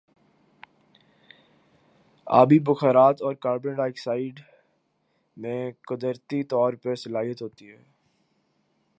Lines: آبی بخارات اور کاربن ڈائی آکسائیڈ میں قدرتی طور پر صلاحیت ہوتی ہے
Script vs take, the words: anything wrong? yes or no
no